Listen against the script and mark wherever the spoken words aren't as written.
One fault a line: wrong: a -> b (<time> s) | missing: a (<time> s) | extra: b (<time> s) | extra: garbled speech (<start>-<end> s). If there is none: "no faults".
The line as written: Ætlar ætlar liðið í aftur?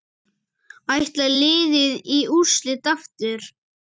missing: ætlar (1.3 s)
extra: úrslit (2.4 s)